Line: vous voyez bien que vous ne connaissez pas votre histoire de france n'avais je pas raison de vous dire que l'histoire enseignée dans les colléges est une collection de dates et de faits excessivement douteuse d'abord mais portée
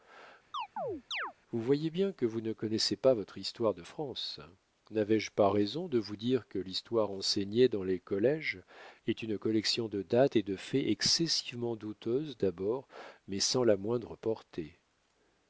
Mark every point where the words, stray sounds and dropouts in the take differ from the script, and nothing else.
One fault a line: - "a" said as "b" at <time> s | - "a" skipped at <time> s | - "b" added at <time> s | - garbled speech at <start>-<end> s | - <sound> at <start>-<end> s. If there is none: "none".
- chirp at 0.5-1.3 s
- "sans la moindre" added at 13.4 s